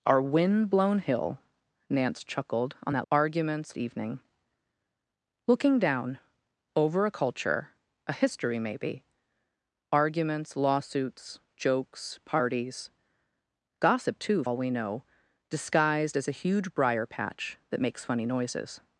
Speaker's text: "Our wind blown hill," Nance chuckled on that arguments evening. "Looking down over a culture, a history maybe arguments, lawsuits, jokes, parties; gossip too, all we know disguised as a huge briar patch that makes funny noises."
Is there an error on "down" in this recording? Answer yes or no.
no